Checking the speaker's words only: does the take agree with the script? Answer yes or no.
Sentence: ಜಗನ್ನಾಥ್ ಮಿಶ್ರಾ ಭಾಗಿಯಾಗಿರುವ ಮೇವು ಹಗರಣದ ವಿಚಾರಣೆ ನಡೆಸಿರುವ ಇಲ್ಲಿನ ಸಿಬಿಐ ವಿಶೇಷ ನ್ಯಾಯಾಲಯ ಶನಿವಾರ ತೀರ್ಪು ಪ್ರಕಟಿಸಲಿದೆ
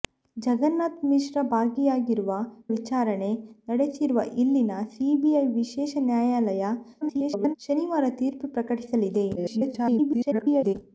no